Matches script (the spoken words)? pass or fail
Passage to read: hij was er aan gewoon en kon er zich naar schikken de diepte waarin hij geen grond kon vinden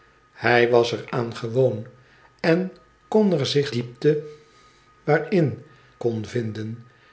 fail